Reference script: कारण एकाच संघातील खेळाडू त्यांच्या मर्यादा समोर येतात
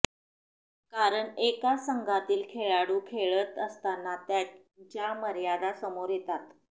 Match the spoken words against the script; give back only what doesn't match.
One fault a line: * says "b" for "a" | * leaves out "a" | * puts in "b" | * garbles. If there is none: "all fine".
* puts in "खेळत असताना"